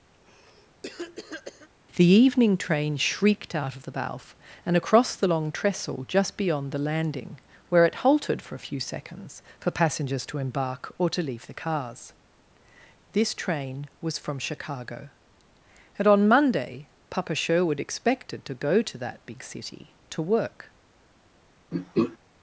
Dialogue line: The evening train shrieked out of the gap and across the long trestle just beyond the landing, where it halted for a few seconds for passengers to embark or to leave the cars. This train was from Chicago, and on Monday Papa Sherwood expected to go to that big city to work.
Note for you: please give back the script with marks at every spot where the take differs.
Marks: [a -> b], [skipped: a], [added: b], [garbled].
The evening train shrieked out of the [gap -> balf] and across the long trestle just beyond the landing, where it halted for a few seconds for passengers to embark or to leave the cars. This train was from Chicago, and on Monday Papa Sherwood expected to go to that big city to work.